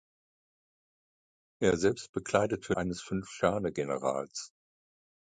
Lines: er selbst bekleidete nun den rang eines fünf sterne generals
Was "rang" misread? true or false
true